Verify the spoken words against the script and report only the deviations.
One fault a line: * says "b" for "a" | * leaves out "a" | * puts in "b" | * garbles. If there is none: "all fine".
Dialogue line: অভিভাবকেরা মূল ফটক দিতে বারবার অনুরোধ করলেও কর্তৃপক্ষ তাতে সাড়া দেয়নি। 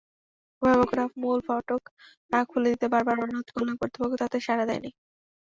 * puts in "খুলে"